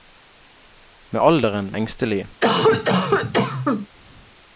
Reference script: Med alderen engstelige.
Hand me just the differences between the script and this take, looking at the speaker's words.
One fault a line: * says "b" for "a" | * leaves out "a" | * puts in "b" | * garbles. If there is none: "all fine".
all fine